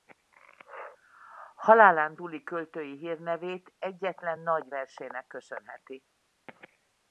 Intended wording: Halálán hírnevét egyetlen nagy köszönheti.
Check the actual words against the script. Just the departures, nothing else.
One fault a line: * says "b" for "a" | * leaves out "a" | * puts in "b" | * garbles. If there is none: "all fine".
* puts in "túli költői"
* puts in "versének"